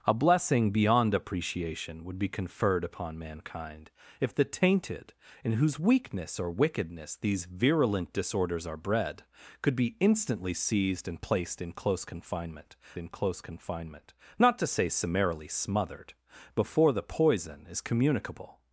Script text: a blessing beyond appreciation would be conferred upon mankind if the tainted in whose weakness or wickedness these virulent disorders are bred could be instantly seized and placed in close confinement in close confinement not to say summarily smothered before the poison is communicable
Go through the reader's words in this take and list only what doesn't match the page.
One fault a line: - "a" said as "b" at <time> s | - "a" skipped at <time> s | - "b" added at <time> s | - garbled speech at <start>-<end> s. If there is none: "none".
none